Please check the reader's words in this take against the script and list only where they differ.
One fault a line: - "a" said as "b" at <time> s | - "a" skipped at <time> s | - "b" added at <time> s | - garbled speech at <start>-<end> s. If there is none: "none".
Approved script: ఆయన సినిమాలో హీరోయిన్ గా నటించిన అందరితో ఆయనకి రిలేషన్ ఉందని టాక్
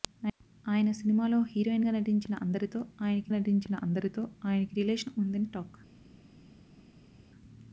- "నటించిన అందరితో ఆయనకి" added at 3.3 s